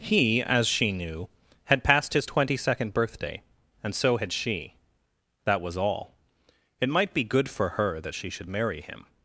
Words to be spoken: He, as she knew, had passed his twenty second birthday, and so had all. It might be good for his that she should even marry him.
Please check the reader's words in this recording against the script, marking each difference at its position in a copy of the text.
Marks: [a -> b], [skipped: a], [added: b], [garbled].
He, as she knew, had passed his twenty second birthday, and so had [added: she That was] all. It might be good for [his -> her] that she should [skipped: even] marry him.